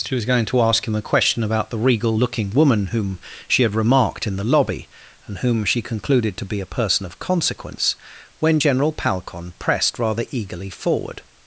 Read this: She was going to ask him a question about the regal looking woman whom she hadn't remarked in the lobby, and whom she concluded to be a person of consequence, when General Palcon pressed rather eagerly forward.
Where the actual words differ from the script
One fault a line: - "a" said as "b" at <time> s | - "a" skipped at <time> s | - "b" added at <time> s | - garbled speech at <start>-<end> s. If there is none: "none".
- "hadn't" said as "had" at 3.6 s